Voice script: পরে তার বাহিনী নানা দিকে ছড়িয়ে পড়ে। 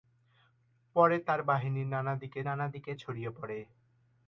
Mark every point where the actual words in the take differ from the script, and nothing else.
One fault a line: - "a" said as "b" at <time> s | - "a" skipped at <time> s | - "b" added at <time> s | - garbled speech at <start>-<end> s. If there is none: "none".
- "নানা দিকে" added at 2.5 s